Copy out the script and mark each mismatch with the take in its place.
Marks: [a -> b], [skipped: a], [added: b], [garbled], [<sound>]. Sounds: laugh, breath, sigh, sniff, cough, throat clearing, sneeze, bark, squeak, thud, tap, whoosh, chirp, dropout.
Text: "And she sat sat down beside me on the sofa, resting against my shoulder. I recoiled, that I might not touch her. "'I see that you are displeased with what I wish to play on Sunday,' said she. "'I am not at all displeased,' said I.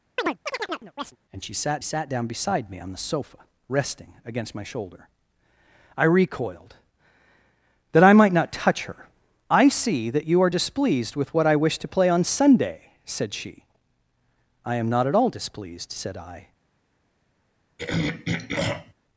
[chirp] "And she sat sat down beside me on the sofa, resting against my shoulder. I recoiled, that I might not touch her. "'I see that you are displeased with what I wish to play on Sunday,' said she. "'I am not at all displeased,' said I. [throat clearing]